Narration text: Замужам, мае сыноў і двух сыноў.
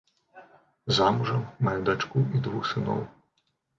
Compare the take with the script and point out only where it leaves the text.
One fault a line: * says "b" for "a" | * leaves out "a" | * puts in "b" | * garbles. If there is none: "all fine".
* says "дачку" for "сыноў"